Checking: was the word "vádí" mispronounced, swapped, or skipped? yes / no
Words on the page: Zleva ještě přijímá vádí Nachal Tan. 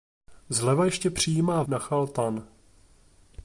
yes